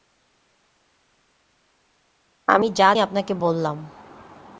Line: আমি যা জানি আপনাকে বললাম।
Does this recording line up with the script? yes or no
no